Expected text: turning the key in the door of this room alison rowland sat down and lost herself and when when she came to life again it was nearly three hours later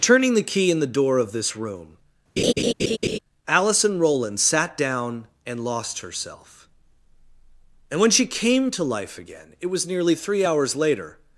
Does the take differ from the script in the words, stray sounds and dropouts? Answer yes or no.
yes